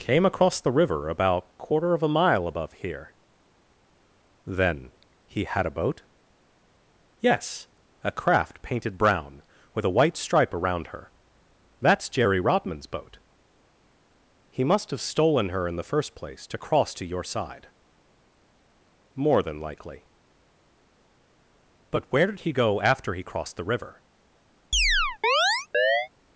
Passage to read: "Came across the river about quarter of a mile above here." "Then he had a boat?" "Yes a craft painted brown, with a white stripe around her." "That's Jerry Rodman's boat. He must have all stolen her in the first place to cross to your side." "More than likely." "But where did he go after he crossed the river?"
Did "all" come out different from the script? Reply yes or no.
yes